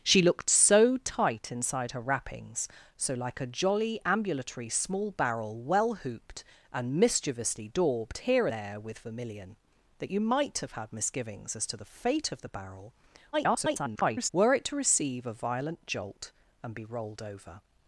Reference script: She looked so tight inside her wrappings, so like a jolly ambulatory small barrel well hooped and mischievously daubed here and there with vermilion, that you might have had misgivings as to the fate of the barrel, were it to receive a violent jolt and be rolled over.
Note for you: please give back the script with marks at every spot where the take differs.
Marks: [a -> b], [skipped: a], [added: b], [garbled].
She looked so tight inside her wrappings, so like a jolly ambulatory small barrel well hooped and mischievously daubed here [skipped: and] there with vermilion, that you might have had misgivings as to the fate of the barrel, [garbled] were it to receive a violent jolt and be rolled over.